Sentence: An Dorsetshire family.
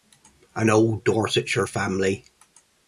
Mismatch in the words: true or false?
true